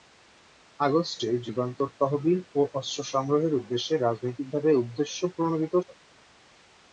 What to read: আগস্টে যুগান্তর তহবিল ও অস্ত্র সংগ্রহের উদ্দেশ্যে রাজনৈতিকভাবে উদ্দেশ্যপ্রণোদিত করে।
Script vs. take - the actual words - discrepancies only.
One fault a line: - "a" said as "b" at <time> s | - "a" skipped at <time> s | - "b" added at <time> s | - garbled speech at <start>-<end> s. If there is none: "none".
none